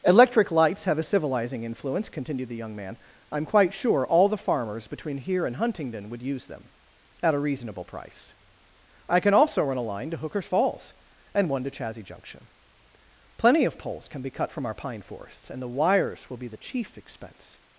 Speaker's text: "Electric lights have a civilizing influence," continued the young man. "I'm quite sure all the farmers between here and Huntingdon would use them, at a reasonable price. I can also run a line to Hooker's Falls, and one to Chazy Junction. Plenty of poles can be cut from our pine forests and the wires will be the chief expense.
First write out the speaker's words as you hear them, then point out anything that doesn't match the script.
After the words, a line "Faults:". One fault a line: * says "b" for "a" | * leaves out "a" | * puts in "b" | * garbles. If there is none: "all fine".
"Electric lights have a civilizing influence," continued the young man. "I'm quite sure all the farmers between here and Huntingdon would use them, at a reasonable price. I can also run a line to Hooker's Falls, and one to Chazy Junction. Plenty of poles can be cut from our pine forests and the wires will be the chief expense.
Faults:
all fine